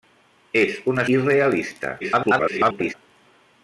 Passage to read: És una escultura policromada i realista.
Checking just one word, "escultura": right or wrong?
wrong